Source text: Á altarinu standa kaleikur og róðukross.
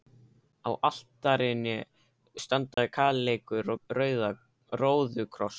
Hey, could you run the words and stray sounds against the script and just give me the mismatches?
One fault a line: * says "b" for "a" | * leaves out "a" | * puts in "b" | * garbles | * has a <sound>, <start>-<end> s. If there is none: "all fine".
* has a dropout, 2.7-2.8 s